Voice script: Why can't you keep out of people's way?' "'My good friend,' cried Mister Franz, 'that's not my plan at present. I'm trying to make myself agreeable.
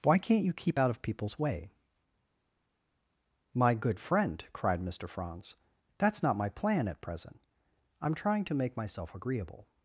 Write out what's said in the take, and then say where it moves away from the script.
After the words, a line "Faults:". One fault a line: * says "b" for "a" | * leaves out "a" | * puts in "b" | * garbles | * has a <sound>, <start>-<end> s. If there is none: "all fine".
Why can't you keep out of people's way?' "'My good friend,' cried Mister Franz, 'that's not my plan at present. I'm trying to make myself agreeable.
Faults:
all fine